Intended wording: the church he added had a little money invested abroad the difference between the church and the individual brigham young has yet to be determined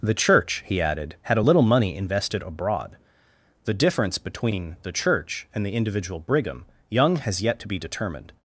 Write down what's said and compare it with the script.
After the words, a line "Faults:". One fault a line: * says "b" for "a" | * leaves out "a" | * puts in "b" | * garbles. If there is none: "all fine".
the church he added had a little money invested abroad the difference between the church and the individual brigham young has yet to be determined
Faults:
all fine